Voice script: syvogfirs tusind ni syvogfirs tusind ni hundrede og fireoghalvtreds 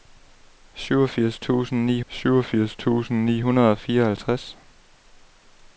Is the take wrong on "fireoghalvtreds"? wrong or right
right